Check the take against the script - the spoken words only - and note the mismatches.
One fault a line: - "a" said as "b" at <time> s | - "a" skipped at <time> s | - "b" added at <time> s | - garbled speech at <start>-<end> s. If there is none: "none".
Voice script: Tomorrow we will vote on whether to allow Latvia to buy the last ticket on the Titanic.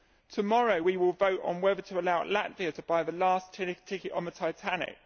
none